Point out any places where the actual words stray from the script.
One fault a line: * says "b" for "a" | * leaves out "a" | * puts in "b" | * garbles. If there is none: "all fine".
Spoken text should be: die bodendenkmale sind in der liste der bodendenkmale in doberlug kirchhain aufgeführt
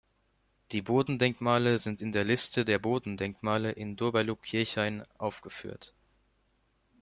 all fine